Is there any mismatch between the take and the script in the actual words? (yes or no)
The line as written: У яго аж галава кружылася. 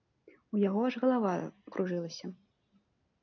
no